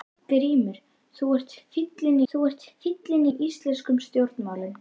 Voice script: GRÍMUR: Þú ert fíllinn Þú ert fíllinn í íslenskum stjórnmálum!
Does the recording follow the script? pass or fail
pass